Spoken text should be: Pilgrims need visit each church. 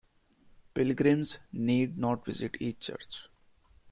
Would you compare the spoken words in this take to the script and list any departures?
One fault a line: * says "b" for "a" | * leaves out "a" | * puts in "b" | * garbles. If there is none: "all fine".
* puts in "not"